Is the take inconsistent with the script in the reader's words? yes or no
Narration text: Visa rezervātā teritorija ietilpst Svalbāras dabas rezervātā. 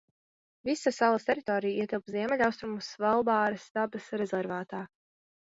yes